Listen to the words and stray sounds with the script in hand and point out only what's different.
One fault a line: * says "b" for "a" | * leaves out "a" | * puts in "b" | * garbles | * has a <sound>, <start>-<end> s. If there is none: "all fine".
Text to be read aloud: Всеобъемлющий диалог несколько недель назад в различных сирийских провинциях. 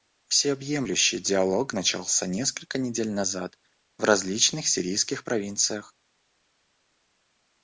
* puts in "начался"